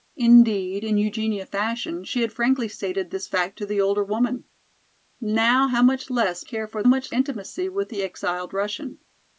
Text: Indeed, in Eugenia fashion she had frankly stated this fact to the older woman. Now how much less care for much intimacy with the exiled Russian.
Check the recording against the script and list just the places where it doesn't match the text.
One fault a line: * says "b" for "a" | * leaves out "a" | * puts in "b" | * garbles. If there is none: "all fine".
all fine